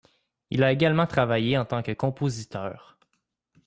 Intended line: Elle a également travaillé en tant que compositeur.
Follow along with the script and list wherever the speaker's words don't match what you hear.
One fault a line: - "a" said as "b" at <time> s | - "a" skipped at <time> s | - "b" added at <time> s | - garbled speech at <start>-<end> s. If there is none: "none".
- "Elle" said as "Il" at 0.5 s